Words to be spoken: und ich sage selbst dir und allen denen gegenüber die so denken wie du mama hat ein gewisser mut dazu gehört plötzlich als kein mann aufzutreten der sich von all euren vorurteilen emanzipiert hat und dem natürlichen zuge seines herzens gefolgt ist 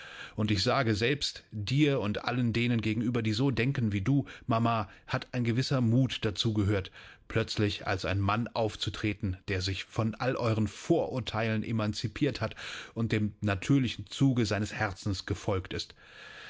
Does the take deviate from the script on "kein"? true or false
true